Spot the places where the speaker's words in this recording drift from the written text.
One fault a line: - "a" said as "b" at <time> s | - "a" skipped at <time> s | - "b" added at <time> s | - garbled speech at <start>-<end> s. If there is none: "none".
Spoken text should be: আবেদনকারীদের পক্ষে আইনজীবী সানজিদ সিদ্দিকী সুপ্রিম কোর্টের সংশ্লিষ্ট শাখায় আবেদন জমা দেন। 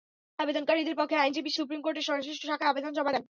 - "সানজিদ সিদ্দিকী" skipped at 1.5 s